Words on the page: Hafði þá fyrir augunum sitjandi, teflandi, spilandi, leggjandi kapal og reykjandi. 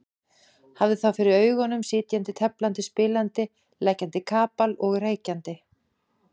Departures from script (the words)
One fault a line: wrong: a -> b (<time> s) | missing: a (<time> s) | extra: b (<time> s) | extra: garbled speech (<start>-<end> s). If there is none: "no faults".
no faults